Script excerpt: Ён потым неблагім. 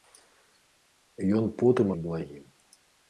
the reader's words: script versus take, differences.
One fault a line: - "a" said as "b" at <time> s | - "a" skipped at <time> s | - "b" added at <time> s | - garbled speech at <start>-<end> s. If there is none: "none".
none